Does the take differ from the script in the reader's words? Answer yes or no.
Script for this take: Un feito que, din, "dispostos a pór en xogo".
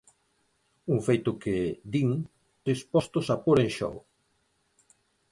no